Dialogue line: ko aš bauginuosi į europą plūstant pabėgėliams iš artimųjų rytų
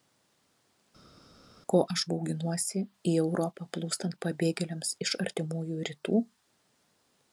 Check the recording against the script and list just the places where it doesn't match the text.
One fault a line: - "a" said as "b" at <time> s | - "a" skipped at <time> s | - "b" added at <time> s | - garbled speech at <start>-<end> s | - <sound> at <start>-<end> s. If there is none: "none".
none